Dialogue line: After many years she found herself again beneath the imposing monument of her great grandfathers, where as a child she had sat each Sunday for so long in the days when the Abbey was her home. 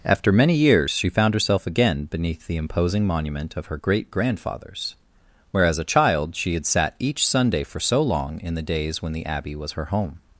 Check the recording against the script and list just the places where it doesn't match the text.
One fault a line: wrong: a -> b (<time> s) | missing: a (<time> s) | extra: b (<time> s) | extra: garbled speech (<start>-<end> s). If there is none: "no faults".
no faults